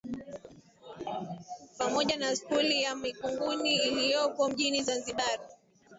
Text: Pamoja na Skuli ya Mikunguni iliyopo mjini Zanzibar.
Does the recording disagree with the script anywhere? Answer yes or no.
no